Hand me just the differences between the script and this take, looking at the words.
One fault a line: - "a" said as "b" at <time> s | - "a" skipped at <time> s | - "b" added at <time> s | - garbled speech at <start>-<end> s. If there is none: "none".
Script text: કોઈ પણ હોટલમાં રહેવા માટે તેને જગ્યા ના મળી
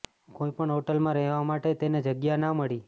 none